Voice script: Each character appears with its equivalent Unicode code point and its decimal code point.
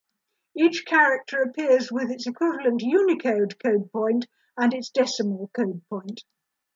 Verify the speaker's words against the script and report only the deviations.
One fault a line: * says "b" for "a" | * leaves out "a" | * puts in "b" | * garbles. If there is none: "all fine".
all fine